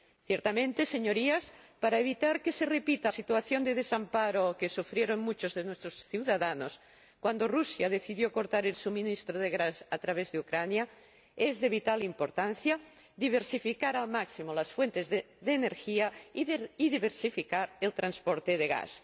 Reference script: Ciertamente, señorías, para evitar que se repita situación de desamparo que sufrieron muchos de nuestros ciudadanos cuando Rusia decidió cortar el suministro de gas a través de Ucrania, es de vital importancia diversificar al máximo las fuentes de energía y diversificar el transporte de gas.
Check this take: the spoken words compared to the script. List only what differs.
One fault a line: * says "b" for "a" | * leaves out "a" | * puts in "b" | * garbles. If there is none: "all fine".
all fine